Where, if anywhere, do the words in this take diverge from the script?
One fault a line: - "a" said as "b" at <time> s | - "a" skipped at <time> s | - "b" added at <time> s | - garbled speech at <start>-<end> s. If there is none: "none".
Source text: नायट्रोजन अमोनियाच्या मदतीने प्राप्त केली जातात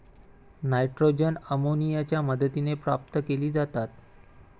none